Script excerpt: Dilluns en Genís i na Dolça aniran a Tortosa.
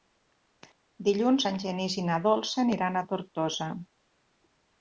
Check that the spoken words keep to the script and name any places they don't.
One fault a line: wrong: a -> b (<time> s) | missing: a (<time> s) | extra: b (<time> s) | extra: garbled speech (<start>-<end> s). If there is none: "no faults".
no faults